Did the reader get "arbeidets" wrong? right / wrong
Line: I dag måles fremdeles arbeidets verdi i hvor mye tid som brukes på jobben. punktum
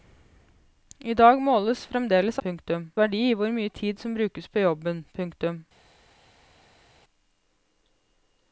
wrong